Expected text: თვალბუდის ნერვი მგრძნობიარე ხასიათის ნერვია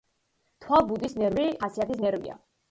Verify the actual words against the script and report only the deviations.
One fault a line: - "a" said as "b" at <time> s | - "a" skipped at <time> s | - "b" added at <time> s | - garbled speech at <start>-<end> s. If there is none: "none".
- "მგრძნობიარე" skipped at 1.4 s